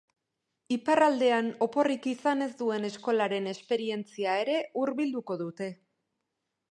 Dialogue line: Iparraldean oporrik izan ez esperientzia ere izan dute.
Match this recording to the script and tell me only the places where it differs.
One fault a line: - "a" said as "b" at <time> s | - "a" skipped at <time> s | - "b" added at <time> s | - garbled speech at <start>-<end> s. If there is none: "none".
- "duen eskolaren" added at 2.6 s
- "izan" said as "hurbilduko" at 4.8 s